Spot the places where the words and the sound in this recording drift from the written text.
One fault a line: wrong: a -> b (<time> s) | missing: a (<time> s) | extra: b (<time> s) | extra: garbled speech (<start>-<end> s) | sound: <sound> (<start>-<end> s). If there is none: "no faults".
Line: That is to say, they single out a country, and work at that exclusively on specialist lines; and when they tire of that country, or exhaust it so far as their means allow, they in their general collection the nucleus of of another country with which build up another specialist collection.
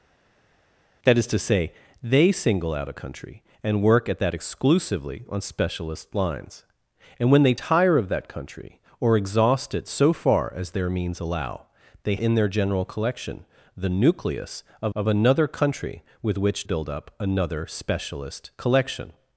no faults